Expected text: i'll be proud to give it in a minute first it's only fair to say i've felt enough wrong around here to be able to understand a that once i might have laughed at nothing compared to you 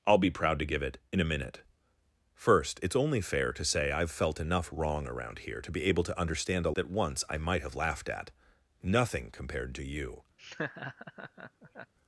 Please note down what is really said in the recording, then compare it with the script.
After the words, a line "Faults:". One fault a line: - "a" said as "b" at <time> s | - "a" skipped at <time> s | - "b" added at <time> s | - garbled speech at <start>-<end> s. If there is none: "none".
i'll be proud to give it in a minute first it's only fair to say i've felt enough wrong around here to be able to understand a that once i might have laughed at nothing compared to you
Faults:
none